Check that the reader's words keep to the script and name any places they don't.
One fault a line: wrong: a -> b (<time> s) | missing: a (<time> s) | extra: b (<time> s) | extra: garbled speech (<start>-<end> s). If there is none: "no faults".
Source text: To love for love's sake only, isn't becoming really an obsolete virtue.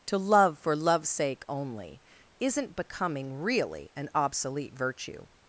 no faults